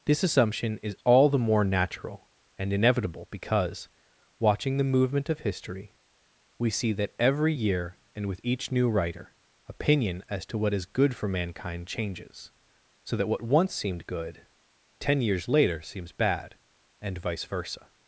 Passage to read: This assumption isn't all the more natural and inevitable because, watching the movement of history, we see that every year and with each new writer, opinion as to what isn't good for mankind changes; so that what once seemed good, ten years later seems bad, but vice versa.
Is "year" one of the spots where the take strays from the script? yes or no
no